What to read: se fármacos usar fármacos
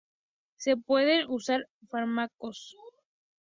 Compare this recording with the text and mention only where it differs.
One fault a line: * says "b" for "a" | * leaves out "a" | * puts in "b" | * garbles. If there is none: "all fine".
* says "pueden" for "fármacos"